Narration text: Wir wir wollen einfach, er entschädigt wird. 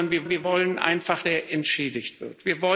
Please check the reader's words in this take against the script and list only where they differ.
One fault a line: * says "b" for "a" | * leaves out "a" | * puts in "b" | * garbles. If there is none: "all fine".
all fine